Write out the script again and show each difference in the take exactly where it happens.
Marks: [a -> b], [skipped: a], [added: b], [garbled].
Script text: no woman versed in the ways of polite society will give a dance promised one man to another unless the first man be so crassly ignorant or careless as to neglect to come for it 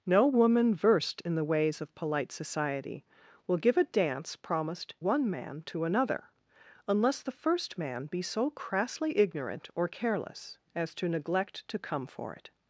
no woman versed in the ways of polite society will give a dance promised one man to another unless the first man be so crassly ignorant or careless as to neglect to come for it